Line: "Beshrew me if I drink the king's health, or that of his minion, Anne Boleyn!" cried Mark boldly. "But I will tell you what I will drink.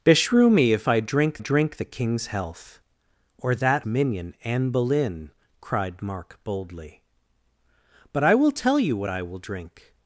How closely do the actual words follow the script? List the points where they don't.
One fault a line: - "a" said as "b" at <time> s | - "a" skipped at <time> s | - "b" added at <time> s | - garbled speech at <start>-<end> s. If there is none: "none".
- "drink" added at 1.4 s
- "of his" skipped at 3.9 s